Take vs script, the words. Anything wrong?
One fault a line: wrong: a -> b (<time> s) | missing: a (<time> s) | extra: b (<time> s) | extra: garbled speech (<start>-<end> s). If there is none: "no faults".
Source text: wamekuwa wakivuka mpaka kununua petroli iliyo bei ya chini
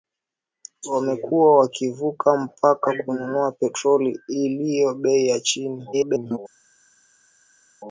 extra: garbled speech (5.9-6.4 s)